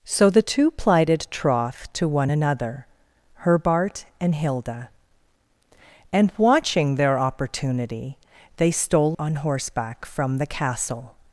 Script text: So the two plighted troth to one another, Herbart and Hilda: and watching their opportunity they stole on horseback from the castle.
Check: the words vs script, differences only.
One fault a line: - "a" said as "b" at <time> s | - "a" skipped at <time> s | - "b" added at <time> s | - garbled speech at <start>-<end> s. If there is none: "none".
none